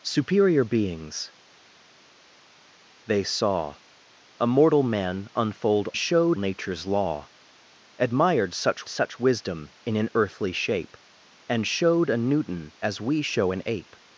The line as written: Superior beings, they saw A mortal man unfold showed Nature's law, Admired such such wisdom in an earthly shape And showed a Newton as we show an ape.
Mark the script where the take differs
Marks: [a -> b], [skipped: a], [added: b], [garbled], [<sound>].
Superior beings, they saw A mortal man unfold showed Nature's law, Admired such such wisdom in an earthly shape And showed a Newton as we show an ape.